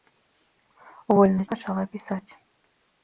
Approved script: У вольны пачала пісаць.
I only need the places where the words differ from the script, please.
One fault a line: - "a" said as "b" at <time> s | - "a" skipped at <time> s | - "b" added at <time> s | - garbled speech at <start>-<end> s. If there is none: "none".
none